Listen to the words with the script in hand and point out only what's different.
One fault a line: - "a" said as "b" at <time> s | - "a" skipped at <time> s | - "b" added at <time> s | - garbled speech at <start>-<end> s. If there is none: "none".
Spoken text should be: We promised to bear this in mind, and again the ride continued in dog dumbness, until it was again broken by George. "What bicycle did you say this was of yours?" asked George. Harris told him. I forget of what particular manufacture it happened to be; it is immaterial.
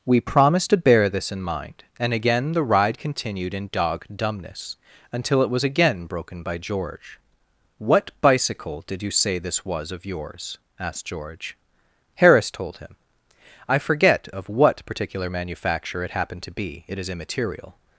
none